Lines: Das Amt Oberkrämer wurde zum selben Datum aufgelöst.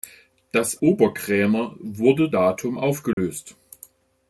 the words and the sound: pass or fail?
fail